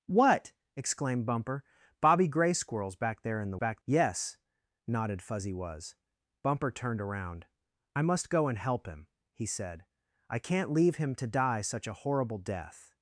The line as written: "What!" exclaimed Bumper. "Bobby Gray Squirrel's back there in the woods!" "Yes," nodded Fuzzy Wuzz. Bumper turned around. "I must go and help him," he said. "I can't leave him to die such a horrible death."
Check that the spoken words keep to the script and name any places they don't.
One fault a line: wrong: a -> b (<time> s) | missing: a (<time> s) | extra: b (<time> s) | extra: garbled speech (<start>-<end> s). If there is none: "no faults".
wrong: woods -> back (3.5 s)